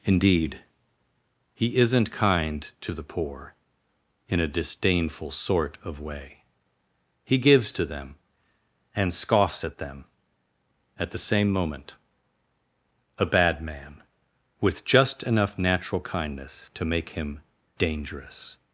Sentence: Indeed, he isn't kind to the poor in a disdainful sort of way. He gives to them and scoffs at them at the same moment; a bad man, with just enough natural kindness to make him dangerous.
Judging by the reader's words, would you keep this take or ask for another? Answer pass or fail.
pass